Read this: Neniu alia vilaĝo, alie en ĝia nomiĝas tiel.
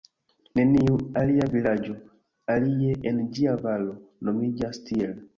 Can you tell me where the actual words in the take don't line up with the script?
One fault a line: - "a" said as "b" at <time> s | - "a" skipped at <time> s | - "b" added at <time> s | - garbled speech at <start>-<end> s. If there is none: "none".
- "valo" added at 3.7 s